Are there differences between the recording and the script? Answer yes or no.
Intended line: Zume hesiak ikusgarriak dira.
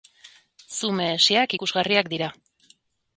no